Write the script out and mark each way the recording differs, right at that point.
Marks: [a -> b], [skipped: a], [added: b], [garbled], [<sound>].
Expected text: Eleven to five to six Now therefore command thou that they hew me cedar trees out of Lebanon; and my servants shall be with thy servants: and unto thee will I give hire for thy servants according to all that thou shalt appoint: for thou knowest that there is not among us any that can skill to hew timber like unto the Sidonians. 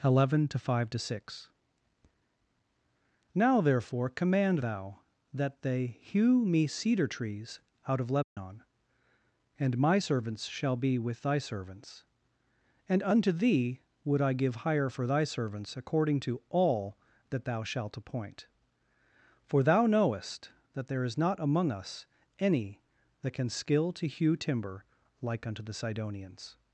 Eleven to five to six Now therefore command thou that they hew me cedar trees out of Lebanon; [dropout] and my servants shall be with thy servants: and unto thee [will -> would] I give hire for thy servants according to all that thou shalt appoint: for thou knowest that there is not among us any that can skill to hew timber like unto the Sidonians.